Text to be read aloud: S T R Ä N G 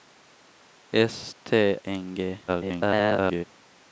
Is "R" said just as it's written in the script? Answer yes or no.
no